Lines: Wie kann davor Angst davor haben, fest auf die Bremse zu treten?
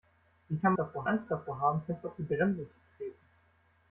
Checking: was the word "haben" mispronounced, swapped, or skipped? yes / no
no